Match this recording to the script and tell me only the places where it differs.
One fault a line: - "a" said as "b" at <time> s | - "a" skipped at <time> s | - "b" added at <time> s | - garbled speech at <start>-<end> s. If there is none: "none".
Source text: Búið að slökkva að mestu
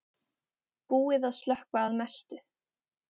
none